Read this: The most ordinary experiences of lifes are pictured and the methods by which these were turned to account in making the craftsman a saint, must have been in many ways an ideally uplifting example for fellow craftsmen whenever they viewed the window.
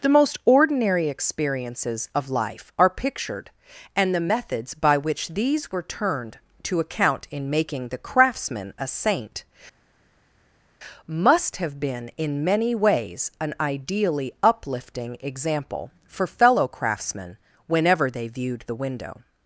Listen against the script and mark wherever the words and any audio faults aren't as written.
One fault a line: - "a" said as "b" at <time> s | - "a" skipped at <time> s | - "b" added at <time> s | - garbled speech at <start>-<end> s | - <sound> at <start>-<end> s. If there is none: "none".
- "lifes" said as "life" at 2.3 s